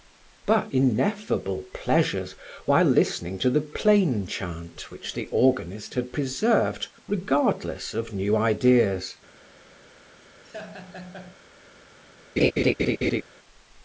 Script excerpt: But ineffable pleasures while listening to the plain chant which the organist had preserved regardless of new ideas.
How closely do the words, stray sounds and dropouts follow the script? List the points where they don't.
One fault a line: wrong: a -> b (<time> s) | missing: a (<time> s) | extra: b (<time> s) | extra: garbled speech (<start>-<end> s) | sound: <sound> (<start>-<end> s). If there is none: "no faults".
sound: laugh (10.4-11.3 s)
sound: laugh (12.4-13.2 s)